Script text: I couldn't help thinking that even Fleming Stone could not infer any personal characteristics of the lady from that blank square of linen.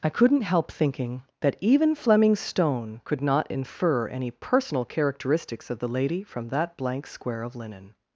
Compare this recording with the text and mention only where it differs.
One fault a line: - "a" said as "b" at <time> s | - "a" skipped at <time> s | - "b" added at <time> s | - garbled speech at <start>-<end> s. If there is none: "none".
none